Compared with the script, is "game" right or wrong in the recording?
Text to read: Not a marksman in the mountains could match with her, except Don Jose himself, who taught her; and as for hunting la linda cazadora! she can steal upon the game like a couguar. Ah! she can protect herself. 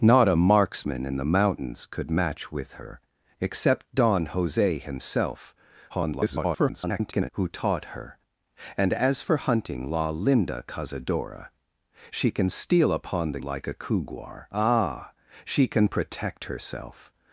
wrong